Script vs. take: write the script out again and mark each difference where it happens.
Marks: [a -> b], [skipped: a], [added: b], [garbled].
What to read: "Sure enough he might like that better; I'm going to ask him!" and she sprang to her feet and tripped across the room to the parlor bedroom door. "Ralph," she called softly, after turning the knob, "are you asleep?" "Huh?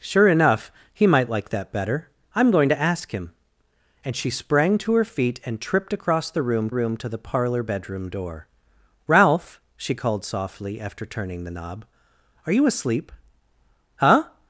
"Sure enough he might like that better; I'm going to ask him!" and she sprang to her feet and tripped across the room [added: room] to the parlor bedroom door. "Ralph," she called softly, after turning the knob, "are you asleep?" "Huh?